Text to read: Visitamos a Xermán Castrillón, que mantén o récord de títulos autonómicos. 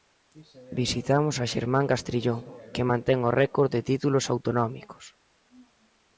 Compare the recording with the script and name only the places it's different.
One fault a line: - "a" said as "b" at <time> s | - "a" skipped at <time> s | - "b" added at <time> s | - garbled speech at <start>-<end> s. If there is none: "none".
none